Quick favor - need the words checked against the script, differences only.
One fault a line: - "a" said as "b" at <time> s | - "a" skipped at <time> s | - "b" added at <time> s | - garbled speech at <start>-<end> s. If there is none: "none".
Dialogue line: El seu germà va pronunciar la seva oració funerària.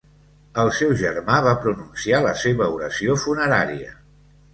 none